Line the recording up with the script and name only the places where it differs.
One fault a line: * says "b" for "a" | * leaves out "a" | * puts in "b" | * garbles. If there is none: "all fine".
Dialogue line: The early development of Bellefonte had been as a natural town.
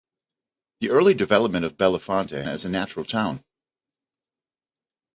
* leaves out "had been"